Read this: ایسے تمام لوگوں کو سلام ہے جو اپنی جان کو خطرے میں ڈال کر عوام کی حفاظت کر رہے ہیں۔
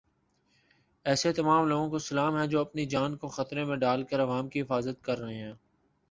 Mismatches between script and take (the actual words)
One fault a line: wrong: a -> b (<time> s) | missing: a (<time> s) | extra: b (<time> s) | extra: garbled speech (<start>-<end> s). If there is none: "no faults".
no faults